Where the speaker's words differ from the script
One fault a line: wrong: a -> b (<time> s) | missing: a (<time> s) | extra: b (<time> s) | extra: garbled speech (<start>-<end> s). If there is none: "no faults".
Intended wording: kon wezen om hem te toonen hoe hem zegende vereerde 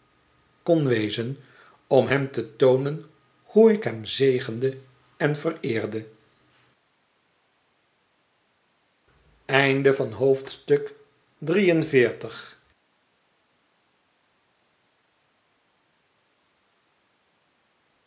extra: ik (3.7 s)
extra: en (5.2 s)